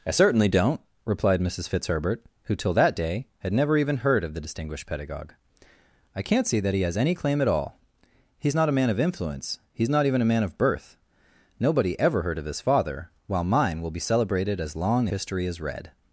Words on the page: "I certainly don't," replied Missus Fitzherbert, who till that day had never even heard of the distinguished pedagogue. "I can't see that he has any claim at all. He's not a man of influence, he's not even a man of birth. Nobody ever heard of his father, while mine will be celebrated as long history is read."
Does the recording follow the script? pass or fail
pass